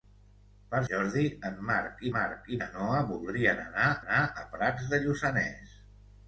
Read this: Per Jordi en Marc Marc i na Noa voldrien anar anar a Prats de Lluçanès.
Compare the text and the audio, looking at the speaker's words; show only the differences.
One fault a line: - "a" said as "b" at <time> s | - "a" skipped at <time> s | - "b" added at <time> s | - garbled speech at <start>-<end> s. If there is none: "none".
none